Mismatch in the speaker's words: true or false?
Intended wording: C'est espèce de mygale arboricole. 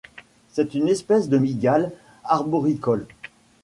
true